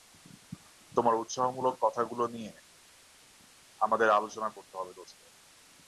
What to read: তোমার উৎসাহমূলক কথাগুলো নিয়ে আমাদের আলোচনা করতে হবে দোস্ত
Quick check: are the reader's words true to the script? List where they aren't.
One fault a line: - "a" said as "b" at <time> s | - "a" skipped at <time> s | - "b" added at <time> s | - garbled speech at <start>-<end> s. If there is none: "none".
none